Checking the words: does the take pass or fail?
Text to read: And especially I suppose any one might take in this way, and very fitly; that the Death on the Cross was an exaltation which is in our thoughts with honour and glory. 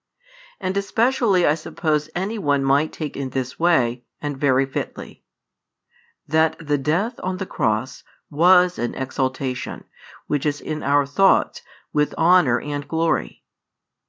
pass